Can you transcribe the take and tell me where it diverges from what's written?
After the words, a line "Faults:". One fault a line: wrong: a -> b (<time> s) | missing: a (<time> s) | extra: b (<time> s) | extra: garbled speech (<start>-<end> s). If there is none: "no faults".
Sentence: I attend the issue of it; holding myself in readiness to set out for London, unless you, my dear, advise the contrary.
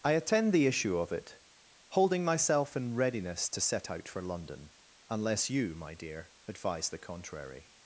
I attend the issue of it; holding myself in readiness to set out for London, unless you, my dear, advise the contrary.
Faults:
no faults